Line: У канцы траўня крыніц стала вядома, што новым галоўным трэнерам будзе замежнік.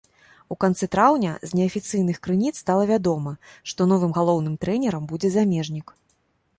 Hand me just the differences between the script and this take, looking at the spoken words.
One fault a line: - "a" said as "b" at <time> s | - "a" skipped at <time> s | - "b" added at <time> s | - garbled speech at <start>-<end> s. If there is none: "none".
- "з неафіцыйных" added at 1.5 s